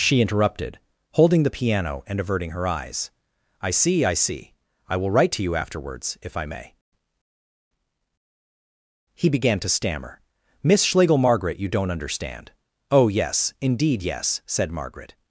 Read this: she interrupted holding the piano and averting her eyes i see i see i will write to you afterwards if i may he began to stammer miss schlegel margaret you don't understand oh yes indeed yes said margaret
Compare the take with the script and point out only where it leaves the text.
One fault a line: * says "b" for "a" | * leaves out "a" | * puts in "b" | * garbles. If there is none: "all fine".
all fine